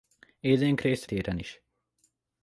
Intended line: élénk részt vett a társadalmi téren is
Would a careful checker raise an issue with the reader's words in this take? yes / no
yes